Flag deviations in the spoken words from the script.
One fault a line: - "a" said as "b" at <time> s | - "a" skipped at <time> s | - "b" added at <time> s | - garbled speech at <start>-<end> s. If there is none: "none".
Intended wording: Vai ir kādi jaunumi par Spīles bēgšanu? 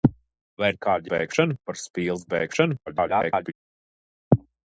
- "jaunumi" said as "bēgšanu" at 1.1 s
- garbled speech at 2.9-3.5 s